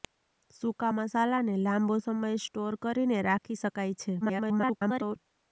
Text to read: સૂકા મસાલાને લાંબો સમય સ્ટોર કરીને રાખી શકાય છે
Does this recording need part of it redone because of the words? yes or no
yes